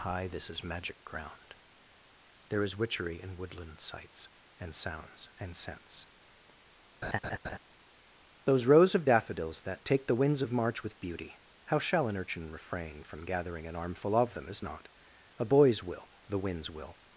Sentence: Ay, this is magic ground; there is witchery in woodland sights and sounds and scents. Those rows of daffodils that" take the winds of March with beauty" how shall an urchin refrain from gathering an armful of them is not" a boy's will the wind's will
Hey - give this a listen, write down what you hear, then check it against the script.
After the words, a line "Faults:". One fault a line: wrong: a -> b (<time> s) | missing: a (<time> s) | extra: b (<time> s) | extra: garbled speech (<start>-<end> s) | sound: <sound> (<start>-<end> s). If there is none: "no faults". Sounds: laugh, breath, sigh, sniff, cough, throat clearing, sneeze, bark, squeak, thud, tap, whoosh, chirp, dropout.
Hi, this is magic ground; there is witchery in woodland sights and sounds and scents. Those rows of daffodils that" take the winds of March with beauty" how shall an urchin refrain from gathering an armful of them is not" a boy's will the wind's will
Faults:
wrong: Ay -> Hi (0.0 s)
sound: laugh (7.0-7.6 s)